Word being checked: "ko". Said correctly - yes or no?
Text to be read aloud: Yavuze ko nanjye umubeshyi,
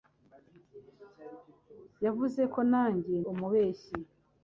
yes